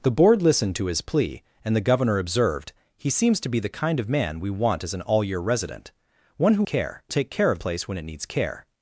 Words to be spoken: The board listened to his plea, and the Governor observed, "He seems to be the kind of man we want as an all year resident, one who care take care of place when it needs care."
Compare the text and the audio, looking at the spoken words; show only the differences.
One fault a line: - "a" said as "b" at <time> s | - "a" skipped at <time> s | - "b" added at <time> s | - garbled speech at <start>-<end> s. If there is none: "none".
none